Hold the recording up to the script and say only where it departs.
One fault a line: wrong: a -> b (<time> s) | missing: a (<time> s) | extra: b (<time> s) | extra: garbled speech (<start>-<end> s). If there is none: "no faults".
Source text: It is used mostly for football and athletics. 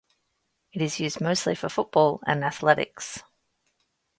no faults